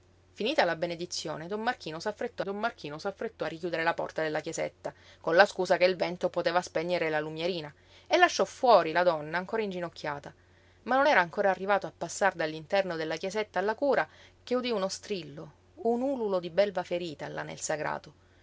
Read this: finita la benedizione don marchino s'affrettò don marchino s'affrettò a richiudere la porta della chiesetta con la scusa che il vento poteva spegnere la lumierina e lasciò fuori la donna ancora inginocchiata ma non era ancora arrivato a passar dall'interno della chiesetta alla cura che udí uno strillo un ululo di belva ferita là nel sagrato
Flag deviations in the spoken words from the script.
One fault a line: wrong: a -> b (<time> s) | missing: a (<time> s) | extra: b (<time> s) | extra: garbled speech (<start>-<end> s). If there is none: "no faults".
no faults